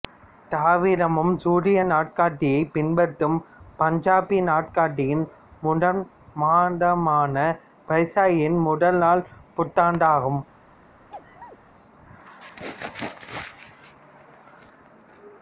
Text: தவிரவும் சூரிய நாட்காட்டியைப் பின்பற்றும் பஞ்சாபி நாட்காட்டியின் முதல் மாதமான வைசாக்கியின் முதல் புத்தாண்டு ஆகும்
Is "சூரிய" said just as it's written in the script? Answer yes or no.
yes